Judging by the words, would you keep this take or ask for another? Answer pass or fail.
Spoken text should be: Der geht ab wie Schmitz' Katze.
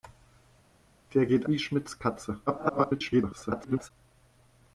fail